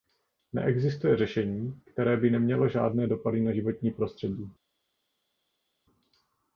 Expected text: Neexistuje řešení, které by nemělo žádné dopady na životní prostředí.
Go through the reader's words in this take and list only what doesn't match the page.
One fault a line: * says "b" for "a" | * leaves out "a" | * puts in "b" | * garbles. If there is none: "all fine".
all fine